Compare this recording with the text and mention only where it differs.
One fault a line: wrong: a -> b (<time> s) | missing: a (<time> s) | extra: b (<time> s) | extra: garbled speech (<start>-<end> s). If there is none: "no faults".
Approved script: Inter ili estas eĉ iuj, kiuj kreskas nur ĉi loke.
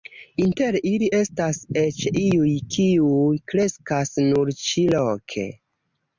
no faults